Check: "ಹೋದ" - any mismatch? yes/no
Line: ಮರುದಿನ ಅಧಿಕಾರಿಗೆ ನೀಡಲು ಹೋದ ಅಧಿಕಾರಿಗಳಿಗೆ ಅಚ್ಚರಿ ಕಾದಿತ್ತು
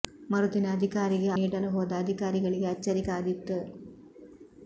no